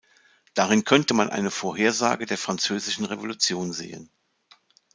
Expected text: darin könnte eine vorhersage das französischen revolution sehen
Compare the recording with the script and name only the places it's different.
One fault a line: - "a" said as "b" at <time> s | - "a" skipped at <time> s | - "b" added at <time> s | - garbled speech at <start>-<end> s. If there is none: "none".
- "man" added at 1.1 s
- "das" said as "der" at 2.2 s